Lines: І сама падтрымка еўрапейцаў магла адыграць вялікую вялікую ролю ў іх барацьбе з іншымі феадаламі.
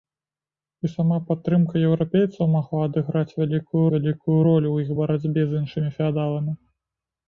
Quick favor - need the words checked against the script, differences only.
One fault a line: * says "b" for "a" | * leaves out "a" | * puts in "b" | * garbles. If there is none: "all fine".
all fine